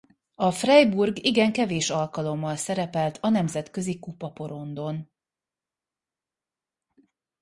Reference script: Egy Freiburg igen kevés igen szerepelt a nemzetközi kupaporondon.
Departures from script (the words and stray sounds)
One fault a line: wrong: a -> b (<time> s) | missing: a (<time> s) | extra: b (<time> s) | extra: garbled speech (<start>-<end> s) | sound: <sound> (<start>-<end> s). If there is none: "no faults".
wrong: Egy -> A (0.3 s)
wrong: igen -> alkalommal (1.9 s)